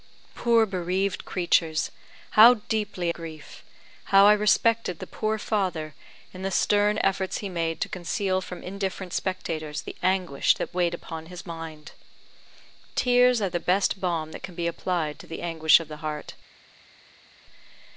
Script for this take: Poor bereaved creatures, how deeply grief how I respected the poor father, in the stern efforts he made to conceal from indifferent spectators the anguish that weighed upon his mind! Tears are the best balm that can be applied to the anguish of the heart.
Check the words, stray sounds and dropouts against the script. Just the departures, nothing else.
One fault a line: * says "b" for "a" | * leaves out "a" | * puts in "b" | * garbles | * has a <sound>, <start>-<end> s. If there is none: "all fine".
all fine